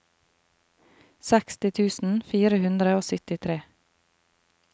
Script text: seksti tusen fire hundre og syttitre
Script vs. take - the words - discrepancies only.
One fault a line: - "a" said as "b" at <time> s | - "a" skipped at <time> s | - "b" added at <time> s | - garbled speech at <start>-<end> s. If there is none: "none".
none